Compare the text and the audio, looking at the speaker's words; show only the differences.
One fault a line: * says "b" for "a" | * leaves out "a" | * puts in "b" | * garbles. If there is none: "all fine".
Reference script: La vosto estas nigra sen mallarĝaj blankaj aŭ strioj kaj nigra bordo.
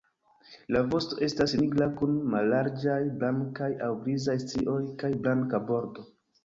* says "kun" for "sen"
* puts in "grizaj"
* says "blanka" for "nigra"